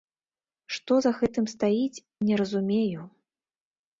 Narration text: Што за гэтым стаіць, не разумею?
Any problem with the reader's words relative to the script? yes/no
no